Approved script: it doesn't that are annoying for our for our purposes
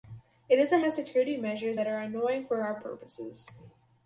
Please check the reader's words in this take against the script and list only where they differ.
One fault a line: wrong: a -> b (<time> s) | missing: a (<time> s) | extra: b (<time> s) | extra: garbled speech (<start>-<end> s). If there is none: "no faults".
extra: have security measures (0.8 s)
missing: for our (2.8 s)